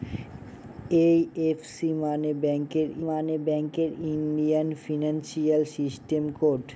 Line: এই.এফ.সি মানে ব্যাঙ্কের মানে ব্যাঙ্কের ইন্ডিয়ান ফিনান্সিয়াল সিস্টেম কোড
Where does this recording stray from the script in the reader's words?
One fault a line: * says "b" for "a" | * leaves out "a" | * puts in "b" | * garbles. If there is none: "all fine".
all fine